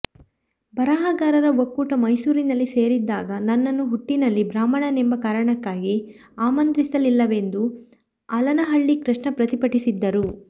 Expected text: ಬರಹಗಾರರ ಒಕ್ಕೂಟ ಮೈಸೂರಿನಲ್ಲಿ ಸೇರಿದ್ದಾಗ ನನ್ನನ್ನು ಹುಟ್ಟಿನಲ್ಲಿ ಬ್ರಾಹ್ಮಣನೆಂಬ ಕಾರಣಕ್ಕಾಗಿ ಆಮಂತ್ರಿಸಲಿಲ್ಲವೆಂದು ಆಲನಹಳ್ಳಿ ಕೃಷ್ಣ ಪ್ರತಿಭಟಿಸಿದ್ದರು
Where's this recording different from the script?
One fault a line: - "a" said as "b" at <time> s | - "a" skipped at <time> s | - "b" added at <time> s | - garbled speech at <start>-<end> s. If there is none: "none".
none